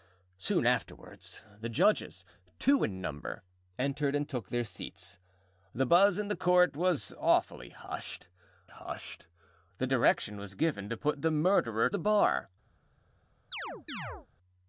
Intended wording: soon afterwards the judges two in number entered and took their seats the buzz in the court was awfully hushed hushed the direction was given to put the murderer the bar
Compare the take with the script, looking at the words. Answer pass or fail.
pass